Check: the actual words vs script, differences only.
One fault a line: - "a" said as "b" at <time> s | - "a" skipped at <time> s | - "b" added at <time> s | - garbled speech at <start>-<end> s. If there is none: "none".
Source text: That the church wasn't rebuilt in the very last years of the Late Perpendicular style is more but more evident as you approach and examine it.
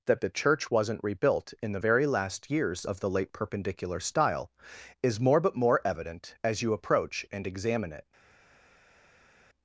none